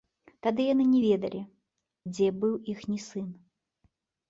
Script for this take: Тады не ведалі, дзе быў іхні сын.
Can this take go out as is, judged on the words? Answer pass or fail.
fail